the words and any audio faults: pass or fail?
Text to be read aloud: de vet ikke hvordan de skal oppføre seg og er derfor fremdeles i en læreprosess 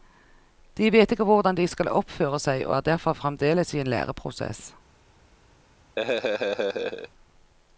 fail